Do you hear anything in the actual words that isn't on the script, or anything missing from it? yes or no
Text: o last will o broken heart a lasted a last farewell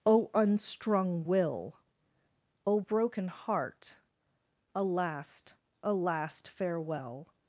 yes